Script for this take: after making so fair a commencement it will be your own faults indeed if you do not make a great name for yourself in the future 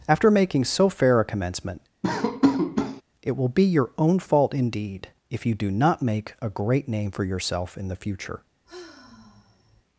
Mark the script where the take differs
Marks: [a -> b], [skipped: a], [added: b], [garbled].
after making so fair a commencement it will be your own [faults -> fault] indeed if you do not make a great name for yourself in the future